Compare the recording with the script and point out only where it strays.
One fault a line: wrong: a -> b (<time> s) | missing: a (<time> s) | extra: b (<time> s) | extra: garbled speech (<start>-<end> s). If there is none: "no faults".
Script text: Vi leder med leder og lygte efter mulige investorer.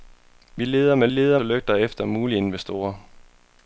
no faults